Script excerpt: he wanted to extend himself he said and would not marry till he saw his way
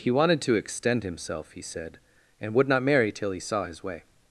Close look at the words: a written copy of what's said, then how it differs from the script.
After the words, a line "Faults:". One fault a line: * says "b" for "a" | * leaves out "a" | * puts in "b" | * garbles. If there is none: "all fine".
he wanted to extend himself he said and would not marry till he saw his way
Faults:
all fine